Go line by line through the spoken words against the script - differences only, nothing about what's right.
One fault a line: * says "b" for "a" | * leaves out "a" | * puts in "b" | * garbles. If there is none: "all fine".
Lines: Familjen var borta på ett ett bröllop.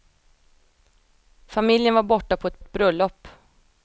all fine